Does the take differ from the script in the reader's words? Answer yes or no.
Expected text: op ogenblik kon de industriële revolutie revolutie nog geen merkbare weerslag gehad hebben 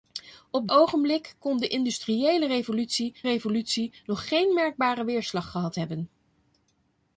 no